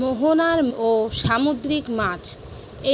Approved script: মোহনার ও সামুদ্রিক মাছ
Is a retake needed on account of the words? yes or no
no